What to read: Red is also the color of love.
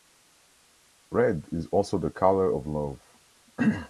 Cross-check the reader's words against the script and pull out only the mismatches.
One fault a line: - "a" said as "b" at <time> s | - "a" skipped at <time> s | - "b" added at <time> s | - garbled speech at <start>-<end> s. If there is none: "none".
none